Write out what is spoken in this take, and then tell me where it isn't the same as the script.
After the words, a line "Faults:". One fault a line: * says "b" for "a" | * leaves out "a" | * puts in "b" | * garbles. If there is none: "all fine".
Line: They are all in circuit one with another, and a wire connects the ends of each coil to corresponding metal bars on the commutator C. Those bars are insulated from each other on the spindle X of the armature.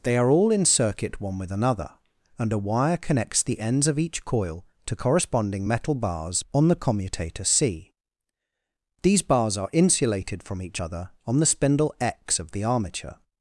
They are all in circuit one with another, and a wire connects the ends of each coil to corresponding metal bars on the commutator C. These bars are insulated from each other on the spindle X of the armature.
Faults:
* says "These" for "Those"